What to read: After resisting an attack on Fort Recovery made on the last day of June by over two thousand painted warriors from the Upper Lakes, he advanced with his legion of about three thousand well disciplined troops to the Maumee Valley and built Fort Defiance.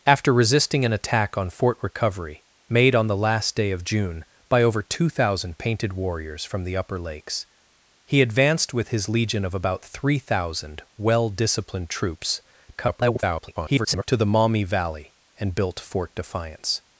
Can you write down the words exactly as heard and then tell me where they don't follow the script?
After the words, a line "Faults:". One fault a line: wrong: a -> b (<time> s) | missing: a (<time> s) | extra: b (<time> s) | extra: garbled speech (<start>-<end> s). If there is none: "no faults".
After resisting an attack on Fort Recovery made on the last day of June by over two thousand painted warriors from the Upper Lakes, he advanced with his legion of about three thousand well disciplined troops [garbled] to the Maumee Valley and built Fort Defiance.
Faults:
extra: garbled speech (12.7-14.0 s)